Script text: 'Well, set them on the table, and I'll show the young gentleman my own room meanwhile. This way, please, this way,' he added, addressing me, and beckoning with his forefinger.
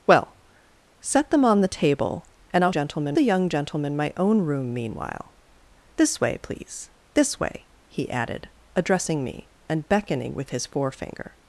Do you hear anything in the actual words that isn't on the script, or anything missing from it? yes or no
yes